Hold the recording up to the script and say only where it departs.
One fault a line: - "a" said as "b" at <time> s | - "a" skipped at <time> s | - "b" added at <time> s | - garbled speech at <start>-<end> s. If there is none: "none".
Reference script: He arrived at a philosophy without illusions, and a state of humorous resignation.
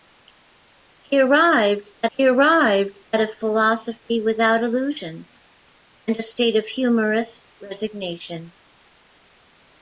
- "he arrived at" added at 2.1 s